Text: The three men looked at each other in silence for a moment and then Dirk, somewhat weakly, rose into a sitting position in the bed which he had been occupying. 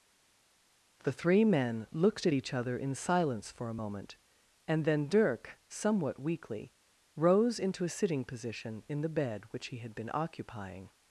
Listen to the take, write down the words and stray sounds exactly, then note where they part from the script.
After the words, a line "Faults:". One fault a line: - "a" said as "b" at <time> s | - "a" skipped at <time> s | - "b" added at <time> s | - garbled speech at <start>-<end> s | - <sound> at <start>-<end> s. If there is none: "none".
The three men looked at each other in silence for a moment and then Dirk, somewhat weakly, rose into a sitting position in the bed which he had been occupying.
Faults:
none